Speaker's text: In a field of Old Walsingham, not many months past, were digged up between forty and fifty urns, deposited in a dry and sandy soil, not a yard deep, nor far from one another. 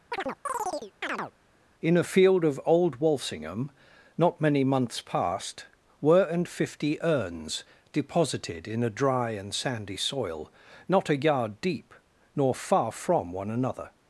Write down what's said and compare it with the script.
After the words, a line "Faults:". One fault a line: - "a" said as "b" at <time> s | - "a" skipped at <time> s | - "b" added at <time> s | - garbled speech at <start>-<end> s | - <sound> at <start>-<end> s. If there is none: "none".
In a field of Old Walsingham, not many months past, were and fifty urns, deposited in a dry and sandy soil, not a yard deep, nor far from one another.
Faults:
- chirp at 0.1-1.3 s
- "digged up between forty" skipped at 6.2 s